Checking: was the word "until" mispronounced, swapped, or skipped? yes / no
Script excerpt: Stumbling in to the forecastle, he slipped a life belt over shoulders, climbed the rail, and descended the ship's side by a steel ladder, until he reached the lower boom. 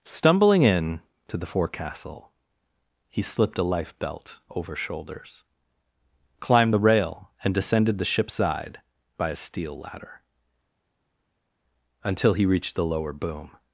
no